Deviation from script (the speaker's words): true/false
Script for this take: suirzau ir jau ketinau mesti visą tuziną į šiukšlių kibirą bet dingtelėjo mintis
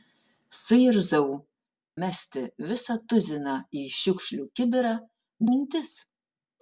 true